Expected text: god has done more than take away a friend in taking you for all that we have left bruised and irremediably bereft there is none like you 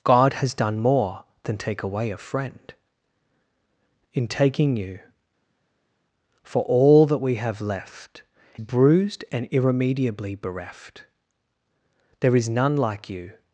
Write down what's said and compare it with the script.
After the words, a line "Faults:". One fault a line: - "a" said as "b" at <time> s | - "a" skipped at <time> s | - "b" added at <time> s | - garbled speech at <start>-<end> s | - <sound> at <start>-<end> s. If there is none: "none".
god has done more than take away a friend in taking you for all that we have left bruised and irremediably bereft there is none like you
Faults:
none